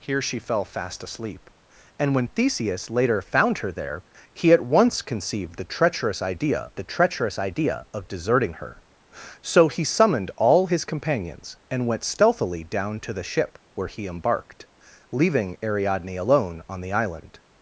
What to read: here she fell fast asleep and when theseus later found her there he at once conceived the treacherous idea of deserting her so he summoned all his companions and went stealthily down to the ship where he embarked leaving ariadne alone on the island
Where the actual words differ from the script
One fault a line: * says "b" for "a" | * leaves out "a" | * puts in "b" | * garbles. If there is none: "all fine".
* puts in "the treacherous idea"